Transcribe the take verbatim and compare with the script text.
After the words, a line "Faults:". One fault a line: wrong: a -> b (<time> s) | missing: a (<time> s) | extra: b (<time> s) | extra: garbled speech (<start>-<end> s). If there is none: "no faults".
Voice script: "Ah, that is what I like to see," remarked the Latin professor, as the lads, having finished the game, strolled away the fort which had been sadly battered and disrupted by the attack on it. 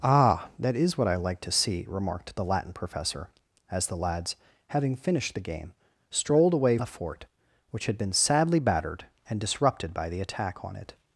"Ah, that is what I like to see," remarked the Latin professor, as the lads, having finished the game, strolled away the fort which had been sadly battered and disrupted by the attack on it.
Faults:
no faults